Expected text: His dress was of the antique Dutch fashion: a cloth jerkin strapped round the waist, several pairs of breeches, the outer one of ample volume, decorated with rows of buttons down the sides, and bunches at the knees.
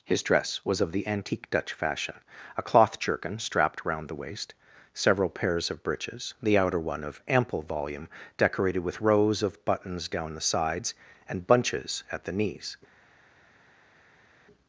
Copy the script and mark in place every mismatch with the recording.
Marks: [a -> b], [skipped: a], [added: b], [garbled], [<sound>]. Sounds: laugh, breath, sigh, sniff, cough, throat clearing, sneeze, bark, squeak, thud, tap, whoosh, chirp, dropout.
His dress was of the antique Dutch fashion: a cloth jerkin strapped round the waist, several pairs of breeches, the outer one of ample volume, decorated with rows of buttons down the sides, and bunches at the knees.